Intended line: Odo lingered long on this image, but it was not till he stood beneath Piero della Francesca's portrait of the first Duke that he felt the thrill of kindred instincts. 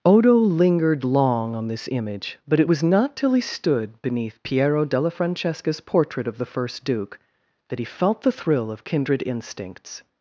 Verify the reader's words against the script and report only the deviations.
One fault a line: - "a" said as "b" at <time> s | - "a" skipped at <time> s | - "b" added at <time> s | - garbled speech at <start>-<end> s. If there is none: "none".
none